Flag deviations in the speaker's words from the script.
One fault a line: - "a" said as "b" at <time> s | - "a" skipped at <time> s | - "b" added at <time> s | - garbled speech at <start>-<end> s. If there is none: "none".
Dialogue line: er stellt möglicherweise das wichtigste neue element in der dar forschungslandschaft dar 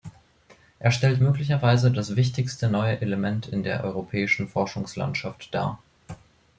- "dar" said as "europäischen" at 3.8 s